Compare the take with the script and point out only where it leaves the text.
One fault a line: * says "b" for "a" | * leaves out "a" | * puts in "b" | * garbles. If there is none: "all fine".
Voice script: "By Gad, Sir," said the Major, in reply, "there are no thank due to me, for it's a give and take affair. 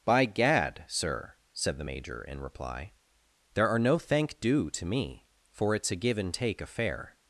all fine